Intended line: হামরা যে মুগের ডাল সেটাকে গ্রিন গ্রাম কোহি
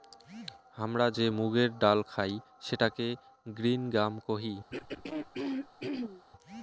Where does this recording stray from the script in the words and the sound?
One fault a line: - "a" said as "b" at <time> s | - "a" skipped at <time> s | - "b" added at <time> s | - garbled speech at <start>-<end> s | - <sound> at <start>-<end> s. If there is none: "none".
- "খাই" added at 2.1 s
- throat clearing at 4.7-6.2 s